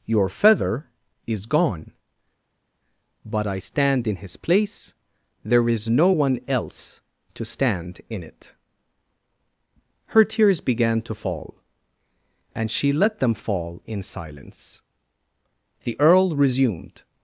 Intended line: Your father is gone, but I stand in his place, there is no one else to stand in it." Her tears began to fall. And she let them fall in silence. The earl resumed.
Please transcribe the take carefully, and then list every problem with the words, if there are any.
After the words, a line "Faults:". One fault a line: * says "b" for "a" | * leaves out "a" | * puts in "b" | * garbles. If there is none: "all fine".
Your feather is gone, but I stand in his place, there is no one else to stand in it." Her tears began to fall. And she let them fall in silence. The earl resumed.
Faults:
* says "feather" for "father"